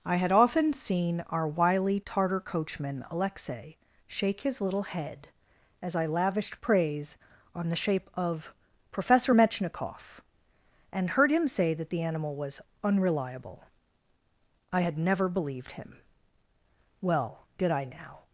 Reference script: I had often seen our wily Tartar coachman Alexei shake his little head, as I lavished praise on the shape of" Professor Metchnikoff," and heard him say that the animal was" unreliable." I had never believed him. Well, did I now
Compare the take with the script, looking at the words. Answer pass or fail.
pass